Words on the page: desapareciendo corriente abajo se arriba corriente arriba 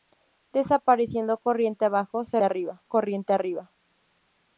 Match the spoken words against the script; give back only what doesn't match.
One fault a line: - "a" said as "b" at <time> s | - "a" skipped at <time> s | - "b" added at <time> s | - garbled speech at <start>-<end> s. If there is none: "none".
none